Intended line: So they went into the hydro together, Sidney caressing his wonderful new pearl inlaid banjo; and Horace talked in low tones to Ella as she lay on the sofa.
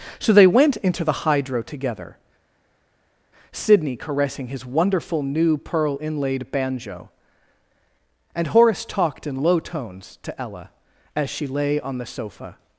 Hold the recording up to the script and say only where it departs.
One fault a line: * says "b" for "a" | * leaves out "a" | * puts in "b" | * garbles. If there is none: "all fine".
all fine